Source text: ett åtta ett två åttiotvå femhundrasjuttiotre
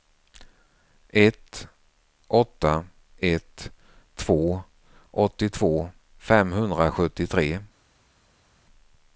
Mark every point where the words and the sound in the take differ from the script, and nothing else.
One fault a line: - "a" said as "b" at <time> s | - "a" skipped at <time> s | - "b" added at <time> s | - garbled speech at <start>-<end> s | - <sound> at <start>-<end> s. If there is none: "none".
none